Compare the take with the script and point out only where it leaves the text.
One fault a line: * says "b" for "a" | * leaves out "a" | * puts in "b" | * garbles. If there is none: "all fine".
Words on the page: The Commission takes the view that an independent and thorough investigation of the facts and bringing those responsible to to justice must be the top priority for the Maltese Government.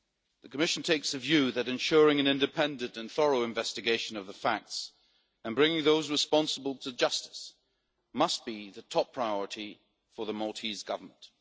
* puts in "ensuring"
* leaves out "to"